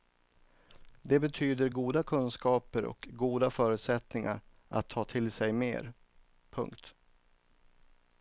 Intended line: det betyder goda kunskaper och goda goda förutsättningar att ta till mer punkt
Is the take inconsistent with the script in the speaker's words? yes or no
yes